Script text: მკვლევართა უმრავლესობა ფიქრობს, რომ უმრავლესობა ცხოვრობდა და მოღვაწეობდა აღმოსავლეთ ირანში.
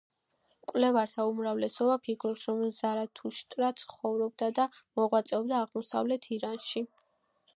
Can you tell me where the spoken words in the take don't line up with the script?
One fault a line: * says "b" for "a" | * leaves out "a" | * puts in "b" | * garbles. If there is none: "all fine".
* says "ზარათუშტრა" for "უმრავლესობა"